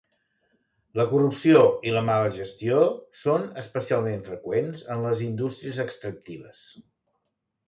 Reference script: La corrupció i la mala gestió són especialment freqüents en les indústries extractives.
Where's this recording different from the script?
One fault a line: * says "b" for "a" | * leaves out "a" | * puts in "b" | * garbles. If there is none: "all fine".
all fine